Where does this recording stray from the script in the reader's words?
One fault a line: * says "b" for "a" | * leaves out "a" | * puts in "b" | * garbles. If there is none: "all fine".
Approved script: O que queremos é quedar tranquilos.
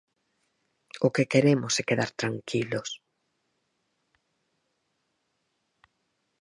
all fine